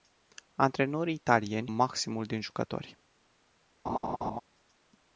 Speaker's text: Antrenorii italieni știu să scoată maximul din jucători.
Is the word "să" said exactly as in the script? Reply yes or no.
no